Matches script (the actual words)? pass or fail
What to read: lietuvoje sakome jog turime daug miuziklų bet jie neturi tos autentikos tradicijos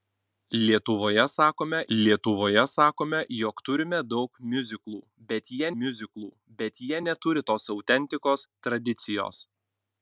fail